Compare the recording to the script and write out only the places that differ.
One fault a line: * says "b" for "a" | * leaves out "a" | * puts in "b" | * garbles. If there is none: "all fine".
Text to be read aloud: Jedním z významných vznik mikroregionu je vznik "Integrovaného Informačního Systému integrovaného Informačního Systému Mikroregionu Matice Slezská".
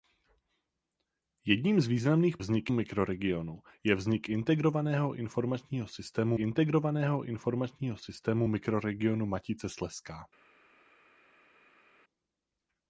all fine